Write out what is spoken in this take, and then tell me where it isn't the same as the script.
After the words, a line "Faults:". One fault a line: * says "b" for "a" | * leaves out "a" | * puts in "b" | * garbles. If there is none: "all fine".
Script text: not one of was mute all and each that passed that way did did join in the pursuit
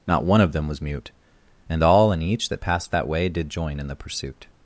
not one of them was mute and all and each that passed that way did join in the pursuit
Faults:
* puts in "them"
* puts in "and"
* leaves out "did"